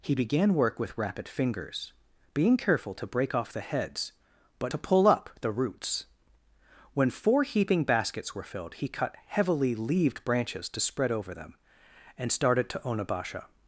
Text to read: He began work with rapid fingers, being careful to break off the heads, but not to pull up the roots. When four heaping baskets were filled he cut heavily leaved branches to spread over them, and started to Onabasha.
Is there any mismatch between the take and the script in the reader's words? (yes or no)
yes